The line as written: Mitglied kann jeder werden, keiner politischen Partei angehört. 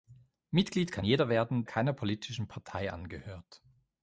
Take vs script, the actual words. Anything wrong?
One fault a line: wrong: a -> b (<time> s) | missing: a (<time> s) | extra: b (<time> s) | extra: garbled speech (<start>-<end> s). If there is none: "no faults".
no faults